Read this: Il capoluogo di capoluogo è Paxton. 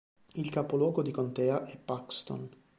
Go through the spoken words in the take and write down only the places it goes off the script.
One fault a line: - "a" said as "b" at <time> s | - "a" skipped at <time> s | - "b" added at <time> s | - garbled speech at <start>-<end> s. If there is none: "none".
- "capoluogo" said as "contea" at 1.1 s